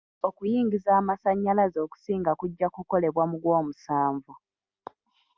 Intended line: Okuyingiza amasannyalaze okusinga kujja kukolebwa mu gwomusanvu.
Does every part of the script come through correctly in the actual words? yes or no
yes